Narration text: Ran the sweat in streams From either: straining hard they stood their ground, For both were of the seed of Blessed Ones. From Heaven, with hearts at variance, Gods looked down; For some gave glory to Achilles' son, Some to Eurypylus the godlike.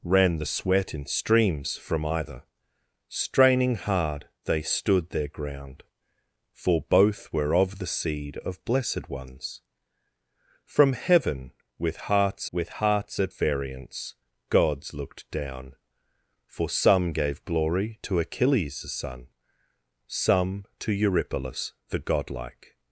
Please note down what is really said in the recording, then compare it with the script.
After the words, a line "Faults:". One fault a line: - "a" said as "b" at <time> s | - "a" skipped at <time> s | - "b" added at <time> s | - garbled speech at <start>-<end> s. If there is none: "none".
Ran the sweat in streams From either: straining hard they stood their ground, For both were of the seed of Blessed Ones. From Heaven, with hearts with hearts at variance, Gods looked down; For some gave glory to Achilles' son, Some to Eurypylus the godlike.
Faults:
- "with hearts" added at 12.5 s